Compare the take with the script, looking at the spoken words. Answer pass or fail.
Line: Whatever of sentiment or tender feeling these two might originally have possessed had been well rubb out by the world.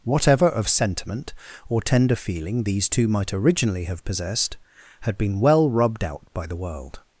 fail